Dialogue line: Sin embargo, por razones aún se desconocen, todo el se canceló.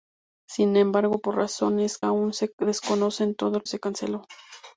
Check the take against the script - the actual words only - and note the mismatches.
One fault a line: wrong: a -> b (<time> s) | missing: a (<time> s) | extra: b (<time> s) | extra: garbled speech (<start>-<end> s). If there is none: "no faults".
no faults